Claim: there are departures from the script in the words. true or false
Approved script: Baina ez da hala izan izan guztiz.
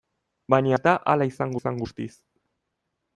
false